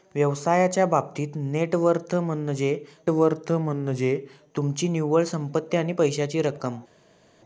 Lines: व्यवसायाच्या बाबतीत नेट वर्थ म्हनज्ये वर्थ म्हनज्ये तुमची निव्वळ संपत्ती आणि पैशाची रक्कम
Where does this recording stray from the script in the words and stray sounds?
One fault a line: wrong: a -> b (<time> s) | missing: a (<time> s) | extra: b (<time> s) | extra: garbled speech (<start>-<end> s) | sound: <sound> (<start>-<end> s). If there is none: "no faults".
no faults